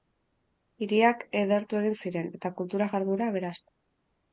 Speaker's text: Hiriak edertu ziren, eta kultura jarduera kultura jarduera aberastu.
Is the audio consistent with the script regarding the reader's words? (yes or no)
no